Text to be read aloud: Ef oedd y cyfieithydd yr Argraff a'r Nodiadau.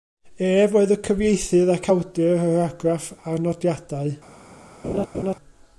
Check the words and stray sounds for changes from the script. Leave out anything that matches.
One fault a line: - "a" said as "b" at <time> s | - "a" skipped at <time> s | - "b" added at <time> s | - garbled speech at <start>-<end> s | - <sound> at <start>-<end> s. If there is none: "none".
- "ac awdur" added at 1.7 s
- laugh at 4.8-5.4 s